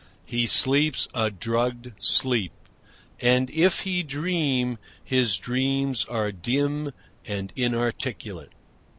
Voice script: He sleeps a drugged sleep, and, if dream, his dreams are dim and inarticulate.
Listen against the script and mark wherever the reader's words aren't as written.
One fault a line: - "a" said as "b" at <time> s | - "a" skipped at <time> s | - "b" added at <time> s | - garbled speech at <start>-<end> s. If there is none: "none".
- "he" added at 3.8 s